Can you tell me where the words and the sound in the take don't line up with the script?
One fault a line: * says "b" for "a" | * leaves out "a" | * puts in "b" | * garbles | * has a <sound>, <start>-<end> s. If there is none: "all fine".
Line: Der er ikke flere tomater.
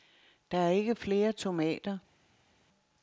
all fine